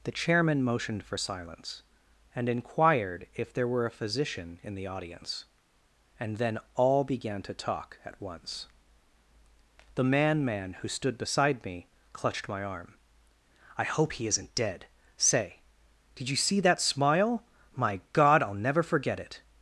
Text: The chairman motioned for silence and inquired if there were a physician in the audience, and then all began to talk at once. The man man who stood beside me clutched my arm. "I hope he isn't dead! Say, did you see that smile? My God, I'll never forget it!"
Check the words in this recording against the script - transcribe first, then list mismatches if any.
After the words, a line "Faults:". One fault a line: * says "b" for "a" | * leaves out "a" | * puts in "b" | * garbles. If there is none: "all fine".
The chairman motioned for silence and inquired if there were a physician in the audience, and then all began to talk at once. The man man who stood beside me clutched my arm. "I hope he isn't dead! Say, did you see that smile? My God, I'll never forget it!"
Faults:
all fine